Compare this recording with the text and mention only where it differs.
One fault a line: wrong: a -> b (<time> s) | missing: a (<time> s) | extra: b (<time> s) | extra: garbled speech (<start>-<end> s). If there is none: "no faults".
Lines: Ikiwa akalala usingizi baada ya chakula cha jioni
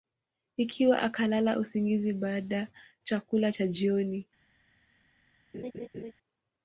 missing: ya (2.7 s)